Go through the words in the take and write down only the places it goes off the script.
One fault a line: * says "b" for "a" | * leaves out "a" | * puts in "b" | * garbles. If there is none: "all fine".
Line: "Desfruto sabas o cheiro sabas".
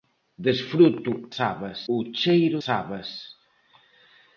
all fine